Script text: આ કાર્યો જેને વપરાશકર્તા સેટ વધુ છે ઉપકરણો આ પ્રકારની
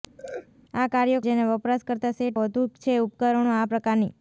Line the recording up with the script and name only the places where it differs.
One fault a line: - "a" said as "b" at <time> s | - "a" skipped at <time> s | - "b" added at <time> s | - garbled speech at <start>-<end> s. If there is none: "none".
none